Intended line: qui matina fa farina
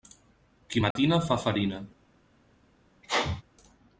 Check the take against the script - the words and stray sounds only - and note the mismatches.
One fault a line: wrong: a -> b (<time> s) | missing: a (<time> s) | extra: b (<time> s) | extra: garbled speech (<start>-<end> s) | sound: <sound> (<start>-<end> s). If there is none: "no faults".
sound: dropout (0.9-1.0 s)
sound: sneeze (3.0-3.4 s)